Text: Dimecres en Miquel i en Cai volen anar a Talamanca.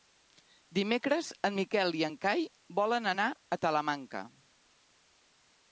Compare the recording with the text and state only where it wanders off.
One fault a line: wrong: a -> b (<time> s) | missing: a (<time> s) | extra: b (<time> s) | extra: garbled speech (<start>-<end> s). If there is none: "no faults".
no faults